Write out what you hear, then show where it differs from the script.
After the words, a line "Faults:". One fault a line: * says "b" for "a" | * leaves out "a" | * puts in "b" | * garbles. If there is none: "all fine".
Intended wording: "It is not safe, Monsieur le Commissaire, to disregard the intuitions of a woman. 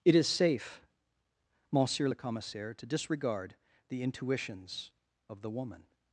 "It is safe, Monsieur le Commissaire, to disregard the intuitions of the woman.
Faults:
* leaves out "not"
* says "the" for "a"